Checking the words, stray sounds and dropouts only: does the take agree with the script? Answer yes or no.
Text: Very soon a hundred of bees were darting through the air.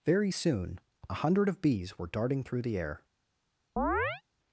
no